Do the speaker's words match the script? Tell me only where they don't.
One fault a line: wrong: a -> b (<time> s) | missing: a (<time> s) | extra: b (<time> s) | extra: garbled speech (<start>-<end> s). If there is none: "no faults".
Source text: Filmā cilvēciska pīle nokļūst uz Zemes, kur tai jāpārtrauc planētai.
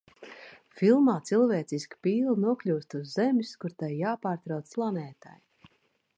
no faults